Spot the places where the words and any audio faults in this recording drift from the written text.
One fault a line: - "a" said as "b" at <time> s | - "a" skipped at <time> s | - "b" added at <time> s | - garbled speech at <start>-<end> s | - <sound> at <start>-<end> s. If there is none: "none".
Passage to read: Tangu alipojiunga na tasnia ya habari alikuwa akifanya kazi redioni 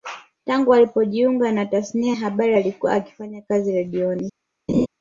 - laugh at 4.7-4.9 s